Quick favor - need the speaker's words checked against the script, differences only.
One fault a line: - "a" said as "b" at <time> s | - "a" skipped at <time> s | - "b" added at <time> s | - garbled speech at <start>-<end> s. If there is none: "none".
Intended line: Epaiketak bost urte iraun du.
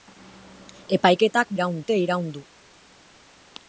- "bost" said as "iraun" at 1.6 s